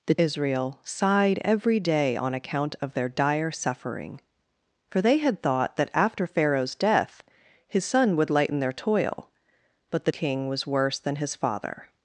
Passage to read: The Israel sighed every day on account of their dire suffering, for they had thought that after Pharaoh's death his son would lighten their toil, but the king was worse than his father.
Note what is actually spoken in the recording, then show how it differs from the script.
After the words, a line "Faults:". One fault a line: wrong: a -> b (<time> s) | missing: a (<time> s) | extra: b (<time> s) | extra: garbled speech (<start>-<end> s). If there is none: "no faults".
The Israel sighed every day on account of their dire suffering, for they had thought that after Pharaoh's death his son would lighten their toil, but the king was worse than his father.
Faults:
no faults